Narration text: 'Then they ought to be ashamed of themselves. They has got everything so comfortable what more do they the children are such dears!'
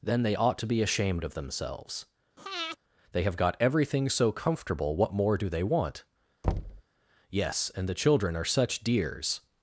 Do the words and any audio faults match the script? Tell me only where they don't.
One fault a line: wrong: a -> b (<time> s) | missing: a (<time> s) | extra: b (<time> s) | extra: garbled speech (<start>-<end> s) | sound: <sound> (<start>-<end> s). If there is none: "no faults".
sound: breath (2.4-2.8 s)
wrong: has -> have (3.2 s)
extra: want Yes and (5.6 s)
sound: thud (6.4-6.8 s)